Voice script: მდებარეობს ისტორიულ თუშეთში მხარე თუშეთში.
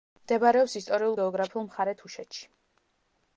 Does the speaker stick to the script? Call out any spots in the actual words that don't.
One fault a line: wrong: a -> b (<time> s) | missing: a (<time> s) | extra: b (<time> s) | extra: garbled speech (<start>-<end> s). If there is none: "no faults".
wrong: თუშეთში -> გეოგრაფიულ (1.2 s)